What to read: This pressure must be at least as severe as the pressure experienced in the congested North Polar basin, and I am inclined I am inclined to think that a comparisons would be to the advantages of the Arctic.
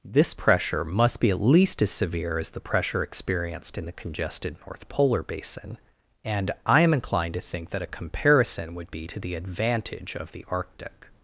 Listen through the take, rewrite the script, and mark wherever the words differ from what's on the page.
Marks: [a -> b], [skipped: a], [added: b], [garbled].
This pressure must be at least as severe as the pressure experienced in the congested North Polar basin, and I am inclined [skipped: I am inclined] to think that a [comparisons -> comparison] would be to the [advantages -> advantage] of the Arctic.